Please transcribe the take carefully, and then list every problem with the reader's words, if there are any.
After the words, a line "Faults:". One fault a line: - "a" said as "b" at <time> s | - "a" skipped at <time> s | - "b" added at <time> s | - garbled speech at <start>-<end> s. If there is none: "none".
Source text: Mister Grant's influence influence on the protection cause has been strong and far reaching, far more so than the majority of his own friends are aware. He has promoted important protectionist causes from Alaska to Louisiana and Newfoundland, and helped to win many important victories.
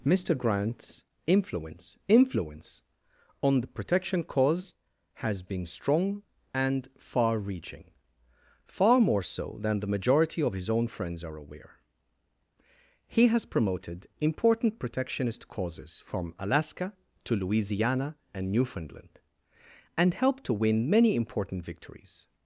Mister Grant's influence influence on the protection cause has been strong and far reaching, far more so than the majority of his own friends are aware. He has promoted important protectionist causes from Alaska to Louisiana and Newfoundland, and helped to win many important victories.
Faults:
none